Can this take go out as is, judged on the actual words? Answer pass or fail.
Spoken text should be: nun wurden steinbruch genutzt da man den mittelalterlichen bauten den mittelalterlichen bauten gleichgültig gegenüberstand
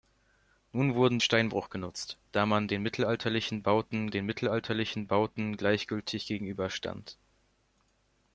pass